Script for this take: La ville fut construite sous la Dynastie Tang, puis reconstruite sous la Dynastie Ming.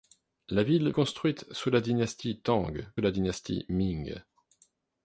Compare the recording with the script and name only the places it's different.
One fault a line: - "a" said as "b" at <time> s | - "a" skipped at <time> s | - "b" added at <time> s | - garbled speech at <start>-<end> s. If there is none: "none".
- "fut" skipped at 0.9 s
- "puis reconstruite sous" skipped at 2.7 s